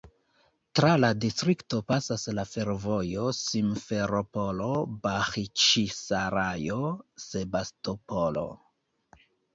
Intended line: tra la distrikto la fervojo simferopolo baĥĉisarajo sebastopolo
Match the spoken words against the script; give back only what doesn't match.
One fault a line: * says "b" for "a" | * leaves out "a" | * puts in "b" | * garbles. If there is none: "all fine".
* puts in "pasas"